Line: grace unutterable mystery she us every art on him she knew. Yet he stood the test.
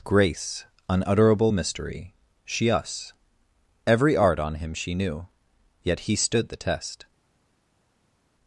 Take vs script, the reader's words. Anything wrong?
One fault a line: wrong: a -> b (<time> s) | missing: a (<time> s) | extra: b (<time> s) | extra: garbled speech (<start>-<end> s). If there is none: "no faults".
no faults